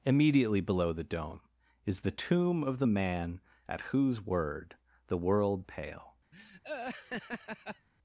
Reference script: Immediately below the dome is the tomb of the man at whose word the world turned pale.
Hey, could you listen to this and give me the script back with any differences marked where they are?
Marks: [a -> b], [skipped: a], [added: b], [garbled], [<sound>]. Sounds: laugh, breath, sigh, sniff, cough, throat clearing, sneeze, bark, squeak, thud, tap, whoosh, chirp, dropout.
Immediately below the dome is the tomb of the man at whose word the world [skipped: turned] pale. [laugh]